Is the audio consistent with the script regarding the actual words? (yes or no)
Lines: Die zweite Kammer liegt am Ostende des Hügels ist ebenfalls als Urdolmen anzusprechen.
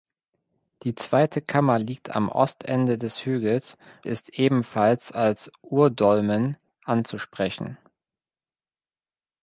yes